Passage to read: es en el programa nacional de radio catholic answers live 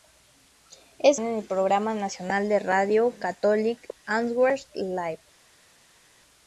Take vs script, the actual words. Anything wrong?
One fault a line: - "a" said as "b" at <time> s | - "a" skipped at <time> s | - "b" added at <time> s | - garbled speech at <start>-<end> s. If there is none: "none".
none